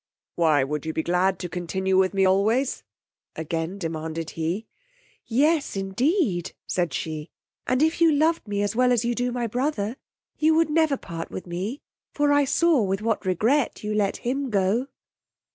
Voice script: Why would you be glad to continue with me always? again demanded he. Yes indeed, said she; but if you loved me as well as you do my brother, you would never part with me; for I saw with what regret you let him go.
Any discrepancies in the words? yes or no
yes